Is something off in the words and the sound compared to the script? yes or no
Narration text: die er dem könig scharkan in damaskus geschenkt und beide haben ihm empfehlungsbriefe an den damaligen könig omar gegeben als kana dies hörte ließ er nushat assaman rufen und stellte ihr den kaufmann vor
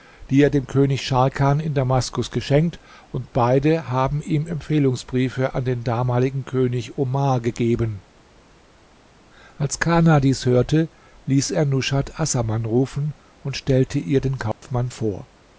yes